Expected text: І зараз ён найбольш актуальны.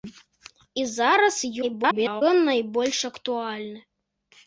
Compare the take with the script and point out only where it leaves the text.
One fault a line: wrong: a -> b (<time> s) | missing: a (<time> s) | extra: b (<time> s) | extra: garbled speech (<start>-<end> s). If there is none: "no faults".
extra: garbled speech (1.6-2.2 s)